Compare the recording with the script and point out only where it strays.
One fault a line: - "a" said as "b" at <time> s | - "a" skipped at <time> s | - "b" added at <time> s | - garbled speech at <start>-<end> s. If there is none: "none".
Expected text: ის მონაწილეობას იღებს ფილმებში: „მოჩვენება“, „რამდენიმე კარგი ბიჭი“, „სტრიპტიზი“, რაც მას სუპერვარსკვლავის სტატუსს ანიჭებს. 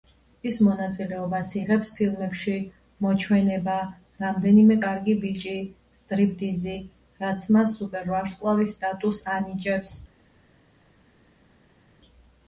none